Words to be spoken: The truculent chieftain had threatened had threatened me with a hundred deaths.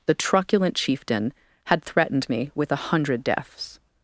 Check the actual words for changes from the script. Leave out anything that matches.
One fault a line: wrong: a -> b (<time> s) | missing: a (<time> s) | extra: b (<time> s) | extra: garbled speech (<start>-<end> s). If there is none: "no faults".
missing: had threatened (2.3 s)